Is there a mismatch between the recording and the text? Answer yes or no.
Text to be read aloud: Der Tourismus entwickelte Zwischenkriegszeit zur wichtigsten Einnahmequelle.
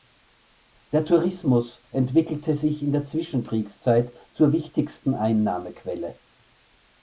yes